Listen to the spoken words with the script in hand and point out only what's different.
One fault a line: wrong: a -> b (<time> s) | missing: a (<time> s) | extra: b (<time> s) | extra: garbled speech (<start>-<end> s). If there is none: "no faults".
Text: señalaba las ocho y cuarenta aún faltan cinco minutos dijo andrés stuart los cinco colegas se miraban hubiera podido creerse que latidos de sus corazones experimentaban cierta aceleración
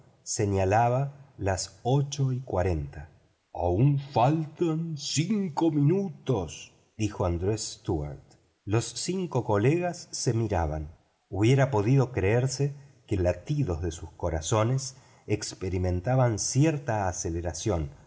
no faults